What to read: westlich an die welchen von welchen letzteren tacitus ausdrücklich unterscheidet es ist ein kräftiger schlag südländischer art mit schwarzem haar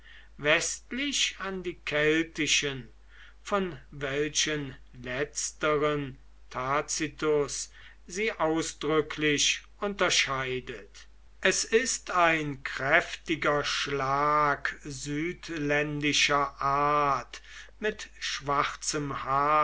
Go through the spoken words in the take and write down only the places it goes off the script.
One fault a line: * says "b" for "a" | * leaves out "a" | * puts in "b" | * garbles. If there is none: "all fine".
* says "keltischen" for "welchen"
* puts in "sie"